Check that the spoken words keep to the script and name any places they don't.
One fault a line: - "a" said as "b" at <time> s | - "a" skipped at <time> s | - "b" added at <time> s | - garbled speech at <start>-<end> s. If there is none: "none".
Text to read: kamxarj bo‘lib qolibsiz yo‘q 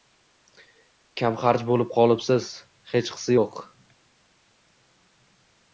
- "hechqisi" added at 3.0 s